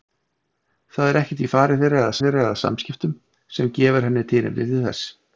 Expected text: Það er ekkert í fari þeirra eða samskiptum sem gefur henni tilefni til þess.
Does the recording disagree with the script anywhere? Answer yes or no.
yes